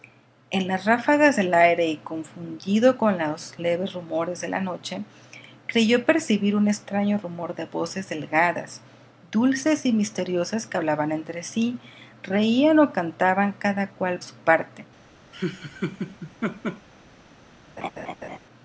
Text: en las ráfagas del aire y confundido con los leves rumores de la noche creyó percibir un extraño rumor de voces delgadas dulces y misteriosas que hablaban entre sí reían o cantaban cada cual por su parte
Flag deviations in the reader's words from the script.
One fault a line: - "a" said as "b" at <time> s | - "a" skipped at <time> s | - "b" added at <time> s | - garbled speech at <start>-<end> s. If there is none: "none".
- "por" skipped at 14.2 s